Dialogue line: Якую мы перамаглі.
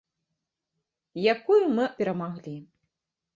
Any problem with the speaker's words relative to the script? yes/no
no